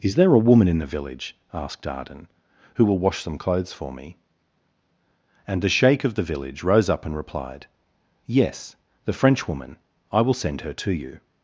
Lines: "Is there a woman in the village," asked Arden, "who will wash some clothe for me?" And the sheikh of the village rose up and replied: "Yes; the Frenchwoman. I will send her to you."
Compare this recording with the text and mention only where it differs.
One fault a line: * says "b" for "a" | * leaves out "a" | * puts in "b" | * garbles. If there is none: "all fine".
* says "clothes" for "clothe"